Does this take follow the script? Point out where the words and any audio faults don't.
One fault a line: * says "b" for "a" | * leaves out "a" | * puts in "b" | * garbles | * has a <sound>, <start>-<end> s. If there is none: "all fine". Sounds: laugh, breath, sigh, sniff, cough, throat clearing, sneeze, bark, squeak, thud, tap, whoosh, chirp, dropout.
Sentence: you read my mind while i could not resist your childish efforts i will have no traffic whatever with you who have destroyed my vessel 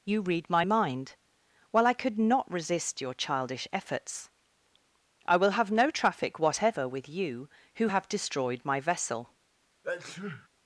* has a sneeze, 9.8-10.5 s